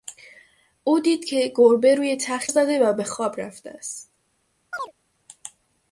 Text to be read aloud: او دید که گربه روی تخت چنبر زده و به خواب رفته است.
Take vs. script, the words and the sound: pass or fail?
fail